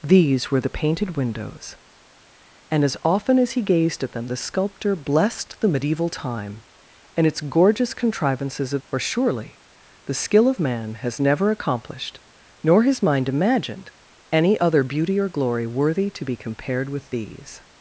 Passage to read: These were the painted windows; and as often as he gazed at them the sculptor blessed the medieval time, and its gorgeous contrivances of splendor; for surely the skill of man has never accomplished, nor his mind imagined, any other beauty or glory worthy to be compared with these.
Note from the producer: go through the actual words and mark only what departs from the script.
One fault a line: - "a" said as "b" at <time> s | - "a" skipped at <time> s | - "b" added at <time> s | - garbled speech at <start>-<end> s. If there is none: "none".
- "splendor" skipped at 8.8 s